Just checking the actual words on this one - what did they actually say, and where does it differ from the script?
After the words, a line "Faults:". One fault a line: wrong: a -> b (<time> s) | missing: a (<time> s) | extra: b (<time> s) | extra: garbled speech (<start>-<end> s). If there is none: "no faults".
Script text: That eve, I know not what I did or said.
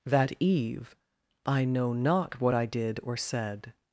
That eve, I know not what I did or said.
Faults:
no faults